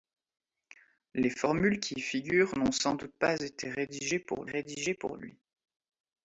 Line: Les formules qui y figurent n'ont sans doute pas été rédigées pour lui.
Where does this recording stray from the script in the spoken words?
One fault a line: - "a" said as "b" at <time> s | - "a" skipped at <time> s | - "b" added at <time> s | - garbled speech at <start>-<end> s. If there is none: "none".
- "rédigées pour" added at 4.5 s